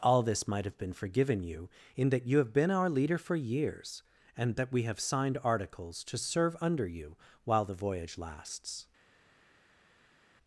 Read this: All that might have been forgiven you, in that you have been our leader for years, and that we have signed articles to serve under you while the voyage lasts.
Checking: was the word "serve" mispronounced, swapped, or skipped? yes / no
no